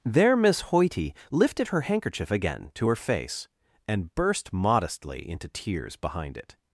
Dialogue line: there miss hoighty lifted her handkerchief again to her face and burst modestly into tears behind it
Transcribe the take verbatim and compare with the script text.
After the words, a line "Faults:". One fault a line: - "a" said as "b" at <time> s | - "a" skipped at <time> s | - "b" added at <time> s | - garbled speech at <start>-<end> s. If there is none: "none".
there miss hoighty lifted her handkerchief again to her face and burst modestly into tears behind it
Faults:
none